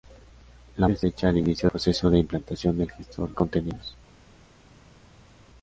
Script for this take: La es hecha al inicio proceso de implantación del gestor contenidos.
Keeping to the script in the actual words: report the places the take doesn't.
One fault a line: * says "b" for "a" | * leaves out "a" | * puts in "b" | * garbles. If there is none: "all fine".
all fine